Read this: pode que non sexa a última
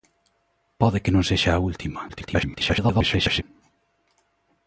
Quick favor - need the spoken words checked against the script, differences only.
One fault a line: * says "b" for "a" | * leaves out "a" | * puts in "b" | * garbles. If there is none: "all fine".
* garbles